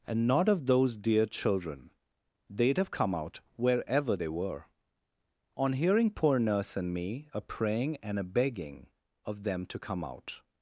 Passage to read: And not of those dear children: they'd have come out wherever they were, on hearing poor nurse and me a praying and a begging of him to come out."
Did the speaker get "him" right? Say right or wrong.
wrong